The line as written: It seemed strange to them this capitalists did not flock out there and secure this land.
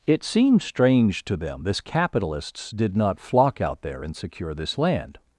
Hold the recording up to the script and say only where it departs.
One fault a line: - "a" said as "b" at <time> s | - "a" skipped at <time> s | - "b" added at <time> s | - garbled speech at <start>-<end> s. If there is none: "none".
none